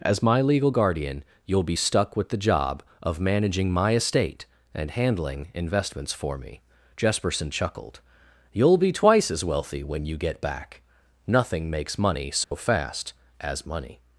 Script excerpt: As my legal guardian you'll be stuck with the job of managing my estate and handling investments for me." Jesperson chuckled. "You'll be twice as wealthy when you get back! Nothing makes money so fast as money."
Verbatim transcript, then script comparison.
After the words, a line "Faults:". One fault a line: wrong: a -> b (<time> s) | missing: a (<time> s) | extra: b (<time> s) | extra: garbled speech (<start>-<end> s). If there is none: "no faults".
As my legal guardian you'll be stuck with the job of managing my estate and handling investments for me." Jesperson chuckled. "You'll be twice as wealthy when you get back! Nothing makes money so fast as money."
Faults:
no faults